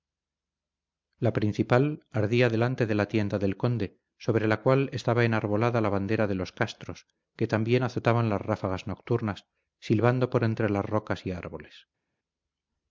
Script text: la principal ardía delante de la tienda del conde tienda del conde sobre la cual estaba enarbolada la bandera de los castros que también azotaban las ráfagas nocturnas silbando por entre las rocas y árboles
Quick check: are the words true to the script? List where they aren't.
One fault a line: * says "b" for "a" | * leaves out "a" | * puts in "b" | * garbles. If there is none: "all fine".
* leaves out "tienda del conde"